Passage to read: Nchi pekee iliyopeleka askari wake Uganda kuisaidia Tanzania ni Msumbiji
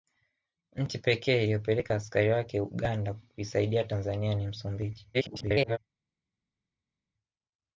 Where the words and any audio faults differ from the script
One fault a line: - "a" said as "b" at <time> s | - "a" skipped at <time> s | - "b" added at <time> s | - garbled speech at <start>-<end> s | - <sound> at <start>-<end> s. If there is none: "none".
- garbled speech at 5.1-5.8 s